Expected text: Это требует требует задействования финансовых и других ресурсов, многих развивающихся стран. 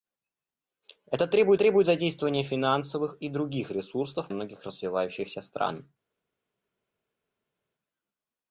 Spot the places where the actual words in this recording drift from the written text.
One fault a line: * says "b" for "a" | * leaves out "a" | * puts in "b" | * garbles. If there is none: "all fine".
all fine